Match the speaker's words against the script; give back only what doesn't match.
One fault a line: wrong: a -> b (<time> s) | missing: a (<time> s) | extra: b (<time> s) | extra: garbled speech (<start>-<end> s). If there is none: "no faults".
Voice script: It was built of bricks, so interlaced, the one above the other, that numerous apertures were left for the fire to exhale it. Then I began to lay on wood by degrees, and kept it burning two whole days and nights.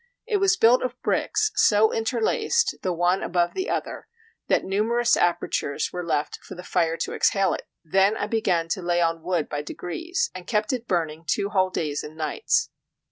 no faults